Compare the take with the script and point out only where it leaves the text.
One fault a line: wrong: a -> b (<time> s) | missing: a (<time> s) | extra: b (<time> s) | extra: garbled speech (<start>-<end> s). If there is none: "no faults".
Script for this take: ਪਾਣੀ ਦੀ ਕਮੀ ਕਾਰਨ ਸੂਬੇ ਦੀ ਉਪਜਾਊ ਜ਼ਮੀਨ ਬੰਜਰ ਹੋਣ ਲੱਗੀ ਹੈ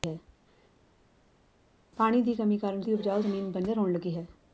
missing: ਸੂਬੇ (2.8 s)